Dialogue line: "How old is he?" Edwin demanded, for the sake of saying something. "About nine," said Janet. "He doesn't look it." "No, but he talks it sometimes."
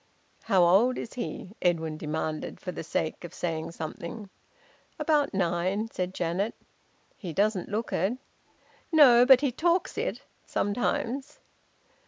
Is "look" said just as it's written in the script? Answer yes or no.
yes